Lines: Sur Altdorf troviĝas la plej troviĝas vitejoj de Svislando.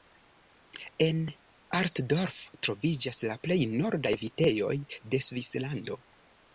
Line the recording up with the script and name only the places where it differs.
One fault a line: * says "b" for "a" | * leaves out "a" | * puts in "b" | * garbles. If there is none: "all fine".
* says "En" for "Sur"
* says "nordaj" for "troviĝas"